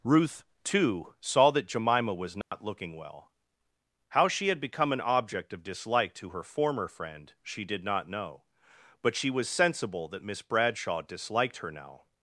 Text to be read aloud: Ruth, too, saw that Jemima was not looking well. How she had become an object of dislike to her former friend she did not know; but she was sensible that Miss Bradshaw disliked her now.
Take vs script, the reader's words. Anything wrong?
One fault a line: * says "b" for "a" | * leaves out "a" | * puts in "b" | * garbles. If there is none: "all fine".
all fine